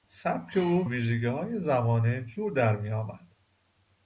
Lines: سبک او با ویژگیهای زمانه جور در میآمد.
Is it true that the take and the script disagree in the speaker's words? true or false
true